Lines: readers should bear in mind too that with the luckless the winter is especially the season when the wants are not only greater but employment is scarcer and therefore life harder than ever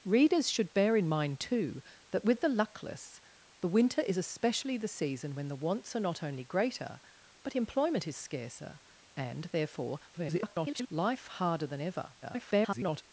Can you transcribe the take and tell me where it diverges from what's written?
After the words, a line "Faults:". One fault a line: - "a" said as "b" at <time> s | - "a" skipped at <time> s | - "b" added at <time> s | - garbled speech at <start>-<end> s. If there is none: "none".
readers should bear in mind too that with the luckless the winter is especially the season when the wants are not only greater but employment is scarcer and therefore [garbled] life harder than ever [garbled]
Faults:
- garbled speech at 10.1-10.9 s
- garbled speech at 12.2-13.0 s